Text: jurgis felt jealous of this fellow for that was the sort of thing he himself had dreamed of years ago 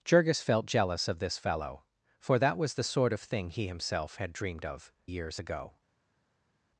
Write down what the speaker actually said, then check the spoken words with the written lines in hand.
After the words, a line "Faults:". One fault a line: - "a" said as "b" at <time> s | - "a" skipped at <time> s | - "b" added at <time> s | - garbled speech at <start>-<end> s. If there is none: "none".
jurgis felt jealous of this fellow for that was the sort of thing he himself had dreamed of years ago
Faults:
none